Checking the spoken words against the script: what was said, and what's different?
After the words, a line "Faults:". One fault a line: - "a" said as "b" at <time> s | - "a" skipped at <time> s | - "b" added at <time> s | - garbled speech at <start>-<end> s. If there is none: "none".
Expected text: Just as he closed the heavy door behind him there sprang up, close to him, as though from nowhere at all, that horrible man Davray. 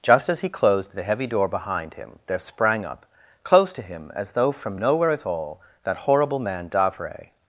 Just as he closed the heavy door behind him there sprang up, close to him, as though from nowhere at all, that horrible man Davray.
Faults:
none